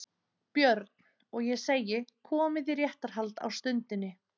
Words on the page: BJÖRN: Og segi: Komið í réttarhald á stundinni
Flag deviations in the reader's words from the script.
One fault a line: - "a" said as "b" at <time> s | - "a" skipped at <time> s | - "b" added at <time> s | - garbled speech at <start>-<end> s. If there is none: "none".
- "ég" added at 1.5 s